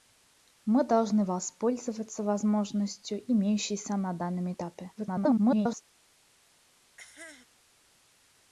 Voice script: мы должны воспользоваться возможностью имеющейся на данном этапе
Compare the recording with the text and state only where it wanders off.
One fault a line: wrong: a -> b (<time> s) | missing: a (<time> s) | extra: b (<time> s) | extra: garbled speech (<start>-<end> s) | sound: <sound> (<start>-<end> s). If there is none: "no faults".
extra: garbled speech (5.0-5.8 s)
sound: cough (7.0-7.4 s)